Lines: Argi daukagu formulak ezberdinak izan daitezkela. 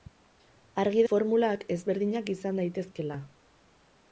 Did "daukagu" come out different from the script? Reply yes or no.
yes